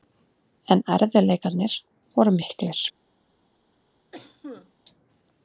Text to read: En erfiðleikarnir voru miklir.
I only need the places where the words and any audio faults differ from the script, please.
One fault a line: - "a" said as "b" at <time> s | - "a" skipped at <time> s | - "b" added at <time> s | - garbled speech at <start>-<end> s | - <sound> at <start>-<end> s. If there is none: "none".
- cough at 4.1-4.7 s